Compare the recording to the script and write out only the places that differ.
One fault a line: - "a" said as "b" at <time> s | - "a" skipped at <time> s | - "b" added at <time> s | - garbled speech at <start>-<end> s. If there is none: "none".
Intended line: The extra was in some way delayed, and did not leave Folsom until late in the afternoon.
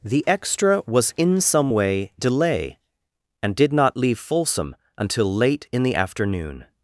- "delayed" said as "delay" at 2.2 s